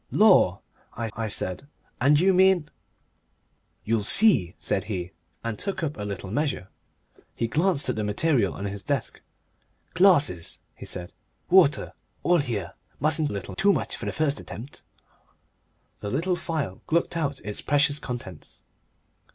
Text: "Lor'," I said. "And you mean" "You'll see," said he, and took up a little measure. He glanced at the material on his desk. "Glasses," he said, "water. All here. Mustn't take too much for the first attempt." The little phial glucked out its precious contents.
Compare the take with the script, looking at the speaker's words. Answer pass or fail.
fail